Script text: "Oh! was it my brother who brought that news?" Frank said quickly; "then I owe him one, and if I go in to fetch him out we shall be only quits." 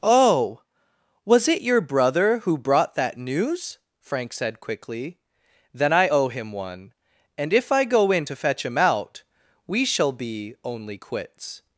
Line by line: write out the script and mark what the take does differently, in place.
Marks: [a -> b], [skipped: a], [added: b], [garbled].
"Oh! was it [my -> your] brother who brought that news?" Frank said quickly; "then I owe him one, and if I go in to fetch him out we shall be only quits."